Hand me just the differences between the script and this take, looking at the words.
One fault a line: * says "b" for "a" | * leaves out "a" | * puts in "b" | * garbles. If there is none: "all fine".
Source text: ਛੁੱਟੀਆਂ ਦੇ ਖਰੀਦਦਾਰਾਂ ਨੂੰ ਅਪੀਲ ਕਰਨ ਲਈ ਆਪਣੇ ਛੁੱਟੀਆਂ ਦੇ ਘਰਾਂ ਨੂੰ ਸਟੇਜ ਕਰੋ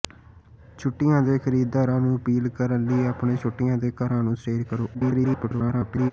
* garbles